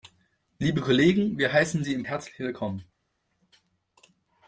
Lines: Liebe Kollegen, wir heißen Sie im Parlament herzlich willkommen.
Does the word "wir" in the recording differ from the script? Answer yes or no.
no